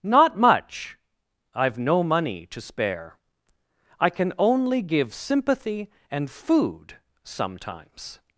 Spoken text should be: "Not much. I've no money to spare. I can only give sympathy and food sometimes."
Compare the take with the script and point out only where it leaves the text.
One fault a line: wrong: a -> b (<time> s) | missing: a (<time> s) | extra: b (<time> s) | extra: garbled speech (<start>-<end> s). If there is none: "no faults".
no faults